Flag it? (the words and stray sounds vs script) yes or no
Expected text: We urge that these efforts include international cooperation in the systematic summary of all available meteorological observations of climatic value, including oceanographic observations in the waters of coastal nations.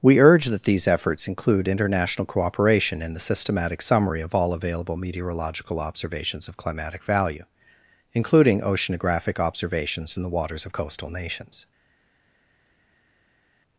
no